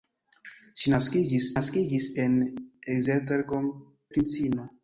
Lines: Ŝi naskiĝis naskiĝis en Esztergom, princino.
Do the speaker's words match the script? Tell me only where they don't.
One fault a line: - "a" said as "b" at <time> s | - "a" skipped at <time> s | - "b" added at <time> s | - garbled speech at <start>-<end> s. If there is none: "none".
none